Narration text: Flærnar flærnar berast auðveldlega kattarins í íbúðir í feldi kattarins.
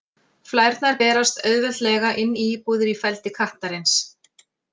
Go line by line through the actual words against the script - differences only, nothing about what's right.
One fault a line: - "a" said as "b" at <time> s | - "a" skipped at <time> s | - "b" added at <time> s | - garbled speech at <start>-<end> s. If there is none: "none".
- "flærnar" skipped at 0.9 s
- "kattarins" said as "inn" at 2.2 s